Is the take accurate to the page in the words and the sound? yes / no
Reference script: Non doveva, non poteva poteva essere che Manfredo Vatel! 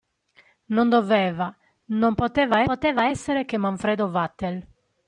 yes